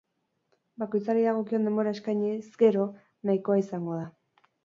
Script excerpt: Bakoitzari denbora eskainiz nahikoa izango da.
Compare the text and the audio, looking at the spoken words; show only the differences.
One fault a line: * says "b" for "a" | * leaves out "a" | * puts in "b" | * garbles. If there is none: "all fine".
* puts in "dagokion"
* puts in "gero"